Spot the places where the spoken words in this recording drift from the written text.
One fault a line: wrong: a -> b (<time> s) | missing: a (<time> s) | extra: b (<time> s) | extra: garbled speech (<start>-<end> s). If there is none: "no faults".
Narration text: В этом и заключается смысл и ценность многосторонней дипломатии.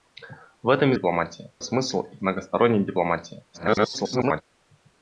wrong: заключается -> дипломатии (0.9 s)
missing: ценность (2.2 s)
extra: garbled speech (3.5-4.4 s)